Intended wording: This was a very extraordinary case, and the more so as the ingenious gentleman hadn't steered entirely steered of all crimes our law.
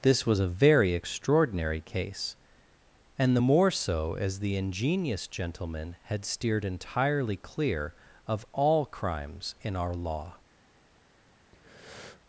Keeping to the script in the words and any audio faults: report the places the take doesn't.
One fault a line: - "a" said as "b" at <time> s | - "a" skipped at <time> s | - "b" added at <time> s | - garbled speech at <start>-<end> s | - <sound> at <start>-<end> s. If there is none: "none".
- "hadn't" said as "had" at 6.0 s
- "steered" said as "clear" at 7.3 s
- "in" added at 9.6 s
- breath at 11.5-12.2 s